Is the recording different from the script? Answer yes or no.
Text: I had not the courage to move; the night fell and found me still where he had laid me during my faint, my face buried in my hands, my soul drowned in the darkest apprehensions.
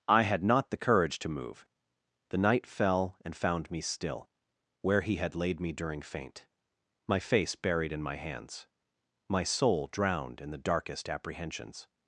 yes